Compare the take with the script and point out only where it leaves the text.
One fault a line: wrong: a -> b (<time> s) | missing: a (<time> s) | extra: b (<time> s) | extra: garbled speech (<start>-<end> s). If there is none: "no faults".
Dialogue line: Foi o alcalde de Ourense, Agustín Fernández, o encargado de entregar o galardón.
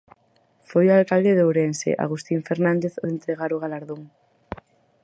missing: encargado (3.0 s)